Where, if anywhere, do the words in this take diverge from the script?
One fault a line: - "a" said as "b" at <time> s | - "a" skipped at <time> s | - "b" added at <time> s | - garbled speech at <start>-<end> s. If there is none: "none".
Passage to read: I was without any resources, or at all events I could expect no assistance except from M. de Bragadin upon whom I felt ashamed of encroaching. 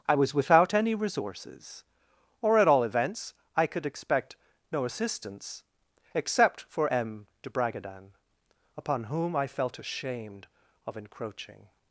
- "from" said as "for" at 6.7 s